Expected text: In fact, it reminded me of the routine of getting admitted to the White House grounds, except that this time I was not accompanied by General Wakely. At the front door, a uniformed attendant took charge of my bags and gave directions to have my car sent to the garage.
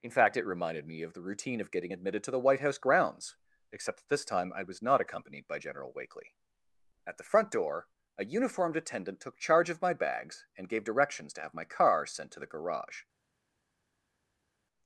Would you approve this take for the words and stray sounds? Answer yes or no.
yes